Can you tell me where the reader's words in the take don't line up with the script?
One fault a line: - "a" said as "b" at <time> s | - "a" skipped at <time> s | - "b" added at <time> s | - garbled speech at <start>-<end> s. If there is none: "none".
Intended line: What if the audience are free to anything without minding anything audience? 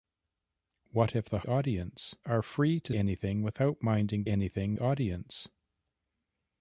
none